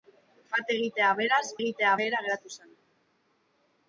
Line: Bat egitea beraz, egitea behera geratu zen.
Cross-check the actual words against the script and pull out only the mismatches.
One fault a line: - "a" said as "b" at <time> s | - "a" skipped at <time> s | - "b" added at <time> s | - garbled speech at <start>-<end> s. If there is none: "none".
none